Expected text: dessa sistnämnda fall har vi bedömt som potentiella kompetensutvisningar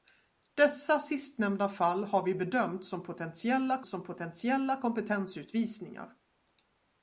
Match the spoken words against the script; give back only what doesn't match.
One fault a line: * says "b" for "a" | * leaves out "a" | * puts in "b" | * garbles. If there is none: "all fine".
* puts in "som potentiella"